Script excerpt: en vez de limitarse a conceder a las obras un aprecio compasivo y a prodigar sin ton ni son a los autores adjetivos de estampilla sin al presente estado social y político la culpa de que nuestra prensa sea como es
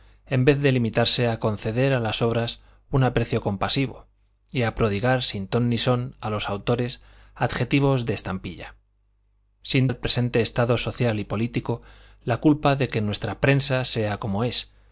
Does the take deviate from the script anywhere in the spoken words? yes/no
no